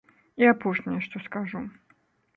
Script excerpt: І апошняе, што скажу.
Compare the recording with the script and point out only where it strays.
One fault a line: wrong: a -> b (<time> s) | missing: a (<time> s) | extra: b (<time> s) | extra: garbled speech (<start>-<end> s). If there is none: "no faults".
no faults